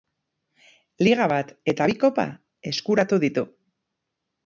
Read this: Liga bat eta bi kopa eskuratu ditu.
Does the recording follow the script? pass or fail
pass